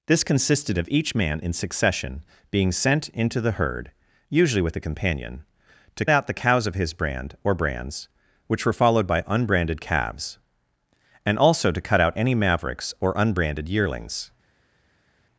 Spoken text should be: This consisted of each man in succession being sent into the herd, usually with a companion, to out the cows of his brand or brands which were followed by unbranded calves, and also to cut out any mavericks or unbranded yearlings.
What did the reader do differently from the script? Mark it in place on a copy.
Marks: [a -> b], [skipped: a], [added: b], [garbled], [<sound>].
This consisted of each man in succession being sent into the herd, usually with a companion, to out the cows of his brand or brands which were followed by unbranded calves, and also to cut out any mavericks or unbranded yearlings.